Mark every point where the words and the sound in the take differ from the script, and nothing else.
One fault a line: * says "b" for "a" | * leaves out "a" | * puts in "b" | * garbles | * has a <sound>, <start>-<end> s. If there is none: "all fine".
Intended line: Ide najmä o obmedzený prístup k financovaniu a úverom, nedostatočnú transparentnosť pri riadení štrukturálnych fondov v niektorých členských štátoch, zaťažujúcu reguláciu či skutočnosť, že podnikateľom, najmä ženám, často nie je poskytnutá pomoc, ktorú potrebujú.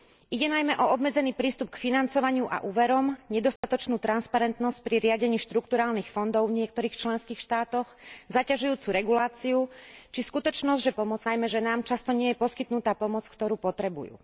* has a dropout, 3.6-3.6 s
* says "pomoc" for "podnikateľom"